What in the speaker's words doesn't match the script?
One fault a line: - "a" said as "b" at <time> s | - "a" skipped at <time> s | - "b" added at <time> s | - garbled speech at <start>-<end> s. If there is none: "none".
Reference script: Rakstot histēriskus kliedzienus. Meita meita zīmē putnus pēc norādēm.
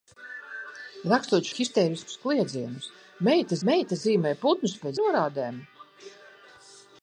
none